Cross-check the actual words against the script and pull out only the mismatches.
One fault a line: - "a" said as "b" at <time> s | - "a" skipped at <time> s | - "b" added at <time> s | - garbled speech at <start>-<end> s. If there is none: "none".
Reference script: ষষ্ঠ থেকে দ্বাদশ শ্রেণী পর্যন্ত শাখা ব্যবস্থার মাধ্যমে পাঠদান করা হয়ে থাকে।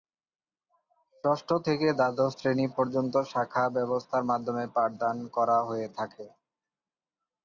none